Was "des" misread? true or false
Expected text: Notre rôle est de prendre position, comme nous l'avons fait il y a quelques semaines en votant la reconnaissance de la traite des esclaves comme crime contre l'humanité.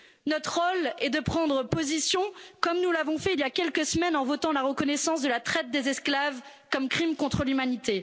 false